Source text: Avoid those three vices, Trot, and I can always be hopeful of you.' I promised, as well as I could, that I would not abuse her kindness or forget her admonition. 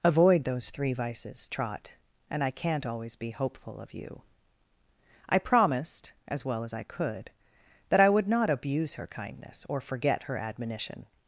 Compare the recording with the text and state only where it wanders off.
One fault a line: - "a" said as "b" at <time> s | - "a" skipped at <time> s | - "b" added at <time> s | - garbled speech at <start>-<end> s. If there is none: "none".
- "can" said as "can't" at 2.5 s